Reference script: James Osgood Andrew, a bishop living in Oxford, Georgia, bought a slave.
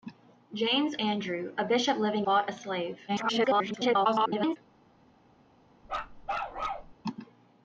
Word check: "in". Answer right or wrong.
wrong